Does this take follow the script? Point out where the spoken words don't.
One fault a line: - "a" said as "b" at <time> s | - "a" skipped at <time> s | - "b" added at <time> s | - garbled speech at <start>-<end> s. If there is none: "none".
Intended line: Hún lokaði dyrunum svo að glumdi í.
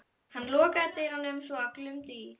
- "Hún" said as "Hann" at 0.3 s